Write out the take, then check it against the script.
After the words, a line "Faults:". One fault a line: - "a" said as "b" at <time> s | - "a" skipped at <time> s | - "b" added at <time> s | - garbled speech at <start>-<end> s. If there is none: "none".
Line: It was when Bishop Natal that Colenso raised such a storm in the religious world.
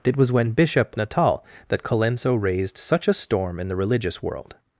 It was when Bishop Natal that Colenso raised such a storm in the religious world.
Faults:
none